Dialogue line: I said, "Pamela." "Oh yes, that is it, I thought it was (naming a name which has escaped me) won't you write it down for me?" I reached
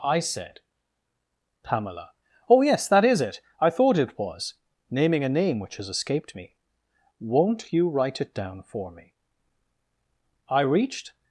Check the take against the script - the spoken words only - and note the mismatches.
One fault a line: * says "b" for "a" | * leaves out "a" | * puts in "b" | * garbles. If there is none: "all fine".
all fine